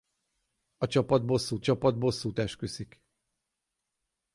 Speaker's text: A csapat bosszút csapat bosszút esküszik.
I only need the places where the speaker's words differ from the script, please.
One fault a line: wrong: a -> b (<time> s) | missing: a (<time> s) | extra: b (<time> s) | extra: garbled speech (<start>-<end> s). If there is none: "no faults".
no faults